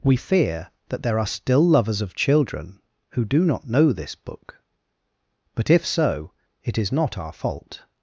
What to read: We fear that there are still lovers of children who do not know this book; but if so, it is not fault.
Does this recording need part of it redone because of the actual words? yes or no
yes